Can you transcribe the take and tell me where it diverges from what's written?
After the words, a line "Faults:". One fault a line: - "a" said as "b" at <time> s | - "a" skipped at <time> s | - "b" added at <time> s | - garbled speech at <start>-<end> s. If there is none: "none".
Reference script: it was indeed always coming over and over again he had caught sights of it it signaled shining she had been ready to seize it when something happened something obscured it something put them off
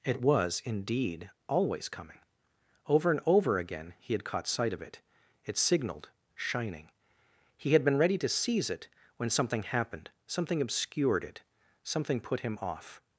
it was indeed always coming over and over again he had caught sight of it it signaled shining he had been ready to seize it when something happened something obscured it something put him off
Faults:
- "sights" said as "sight" at 4.5 s
- "she" said as "he" at 7.6 s
- "them" said as "him" at 12.4 s